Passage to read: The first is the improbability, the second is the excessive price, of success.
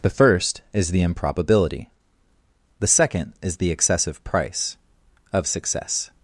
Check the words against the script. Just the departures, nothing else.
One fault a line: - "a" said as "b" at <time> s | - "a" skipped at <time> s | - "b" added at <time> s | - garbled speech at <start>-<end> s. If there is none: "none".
none